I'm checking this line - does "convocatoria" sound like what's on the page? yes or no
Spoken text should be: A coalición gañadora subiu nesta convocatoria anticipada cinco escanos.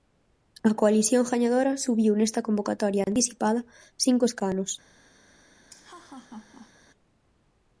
yes